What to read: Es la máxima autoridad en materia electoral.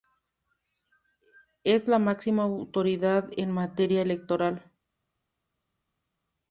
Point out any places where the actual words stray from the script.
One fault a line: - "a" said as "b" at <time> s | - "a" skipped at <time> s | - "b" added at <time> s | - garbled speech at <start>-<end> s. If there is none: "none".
none